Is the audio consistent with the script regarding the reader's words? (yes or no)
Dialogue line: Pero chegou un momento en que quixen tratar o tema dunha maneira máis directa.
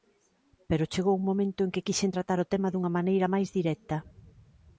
yes